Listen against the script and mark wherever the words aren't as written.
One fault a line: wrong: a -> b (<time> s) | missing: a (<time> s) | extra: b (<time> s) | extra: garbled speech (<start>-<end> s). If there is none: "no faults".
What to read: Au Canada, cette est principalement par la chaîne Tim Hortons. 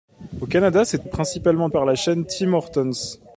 no faults